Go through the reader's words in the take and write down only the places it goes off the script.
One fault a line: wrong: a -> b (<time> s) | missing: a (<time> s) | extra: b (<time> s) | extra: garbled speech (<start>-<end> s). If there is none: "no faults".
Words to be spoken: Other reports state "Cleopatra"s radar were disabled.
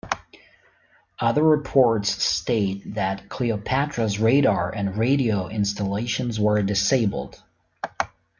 extra: that (3.0 s)
extra: and radio installations (4.7 s)